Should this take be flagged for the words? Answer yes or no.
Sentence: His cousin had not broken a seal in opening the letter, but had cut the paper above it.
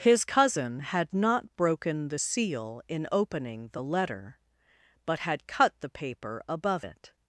yes